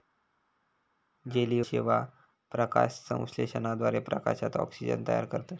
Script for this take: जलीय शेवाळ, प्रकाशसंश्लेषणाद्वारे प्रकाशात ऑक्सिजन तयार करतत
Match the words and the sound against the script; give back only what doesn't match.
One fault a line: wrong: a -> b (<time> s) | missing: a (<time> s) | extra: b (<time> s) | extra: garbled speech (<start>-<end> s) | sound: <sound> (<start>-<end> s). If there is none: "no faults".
no faults